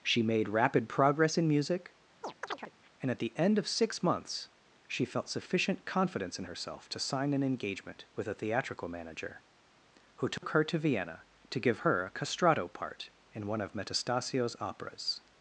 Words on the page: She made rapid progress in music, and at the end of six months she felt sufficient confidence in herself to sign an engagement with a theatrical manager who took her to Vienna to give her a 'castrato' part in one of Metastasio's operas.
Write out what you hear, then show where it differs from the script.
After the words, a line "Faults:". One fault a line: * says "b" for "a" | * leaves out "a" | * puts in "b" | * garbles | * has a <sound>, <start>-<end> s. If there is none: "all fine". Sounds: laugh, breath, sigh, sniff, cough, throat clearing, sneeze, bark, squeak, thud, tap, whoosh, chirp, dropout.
She made rapid progress in music, and at the end of six months she felt sufficient confidence in herself to sign an engagement with a theatrical manager who took her to Vienna to give her a 'castrato' part in one of Metastasio's operas.
Faults:
* has a chirp, 2.2-2.7 s
* has a dropout, 10.4-10.4 s